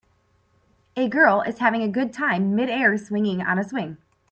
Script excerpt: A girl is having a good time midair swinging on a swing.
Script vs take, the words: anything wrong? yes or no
no